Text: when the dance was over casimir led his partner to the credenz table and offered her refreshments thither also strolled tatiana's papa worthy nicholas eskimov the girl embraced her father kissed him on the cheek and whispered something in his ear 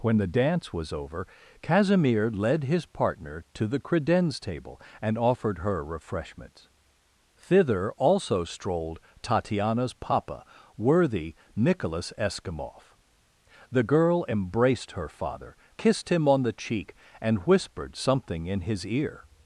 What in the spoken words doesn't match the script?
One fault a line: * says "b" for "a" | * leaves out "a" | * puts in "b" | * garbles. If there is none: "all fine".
all fine